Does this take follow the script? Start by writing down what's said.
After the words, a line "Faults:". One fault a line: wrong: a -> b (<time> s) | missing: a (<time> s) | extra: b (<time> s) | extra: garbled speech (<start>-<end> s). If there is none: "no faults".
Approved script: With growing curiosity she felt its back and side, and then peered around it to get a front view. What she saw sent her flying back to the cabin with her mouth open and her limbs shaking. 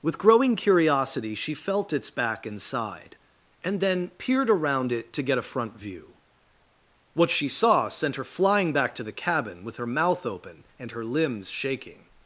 With growing curiosity she felt its back and side, and then peered around it to get a front view. What she saw sent her flying back to the cabin with her mouth open and her limbs shaking.
Faults:
no faults